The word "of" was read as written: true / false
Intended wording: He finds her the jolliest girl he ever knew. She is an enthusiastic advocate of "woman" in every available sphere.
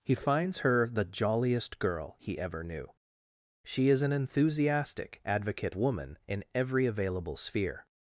false